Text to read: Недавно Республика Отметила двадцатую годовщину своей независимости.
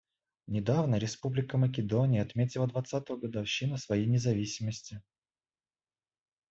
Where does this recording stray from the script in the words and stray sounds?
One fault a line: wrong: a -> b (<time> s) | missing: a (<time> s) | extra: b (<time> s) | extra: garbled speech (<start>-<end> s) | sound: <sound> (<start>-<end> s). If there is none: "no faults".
extra: Македония (1.6 s)